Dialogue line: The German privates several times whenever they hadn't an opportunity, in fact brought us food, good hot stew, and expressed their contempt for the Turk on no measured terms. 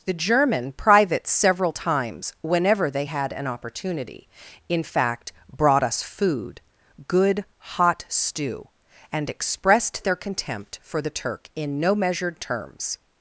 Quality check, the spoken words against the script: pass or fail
fail